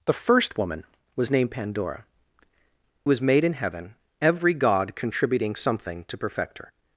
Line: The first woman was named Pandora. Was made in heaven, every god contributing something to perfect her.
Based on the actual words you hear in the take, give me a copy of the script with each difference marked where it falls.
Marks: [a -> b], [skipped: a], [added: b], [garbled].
The first woman was named Pandora. Was made in heaven, every god contributing something to perfect her.